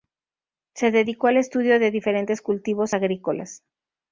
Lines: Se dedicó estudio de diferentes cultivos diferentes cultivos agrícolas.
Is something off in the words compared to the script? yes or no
yes